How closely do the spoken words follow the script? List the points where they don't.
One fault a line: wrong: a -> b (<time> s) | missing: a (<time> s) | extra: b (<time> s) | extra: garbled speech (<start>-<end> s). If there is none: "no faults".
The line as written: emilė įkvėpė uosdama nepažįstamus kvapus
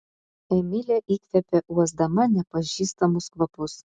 no faults